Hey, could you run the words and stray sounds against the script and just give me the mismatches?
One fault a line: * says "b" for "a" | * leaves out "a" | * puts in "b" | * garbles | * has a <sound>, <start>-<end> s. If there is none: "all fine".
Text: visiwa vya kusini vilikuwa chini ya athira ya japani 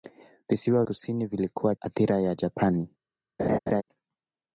* leaves out "vya"
* leaves out "chini ya"
* has a laugh, 3.4-3.8 s